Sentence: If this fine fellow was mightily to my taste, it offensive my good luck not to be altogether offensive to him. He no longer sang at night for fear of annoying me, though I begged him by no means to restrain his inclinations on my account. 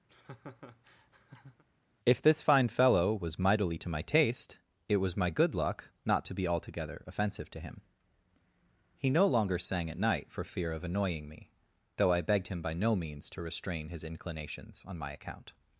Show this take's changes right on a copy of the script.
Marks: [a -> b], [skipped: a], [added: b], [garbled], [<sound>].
[laugh] If this fine fellow was mightily to my taste, it [offensive -> was] my good luck not to be altogether offensive to him. He no longer sang at night for fear of annoying me, though I begged him by no means to restrain his inclinations on my account.